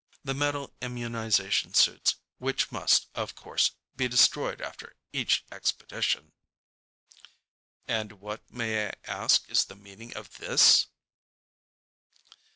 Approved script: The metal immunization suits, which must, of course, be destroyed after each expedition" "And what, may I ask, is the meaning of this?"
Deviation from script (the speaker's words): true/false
false